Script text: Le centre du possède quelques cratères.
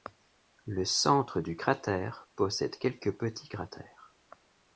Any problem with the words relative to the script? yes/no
yes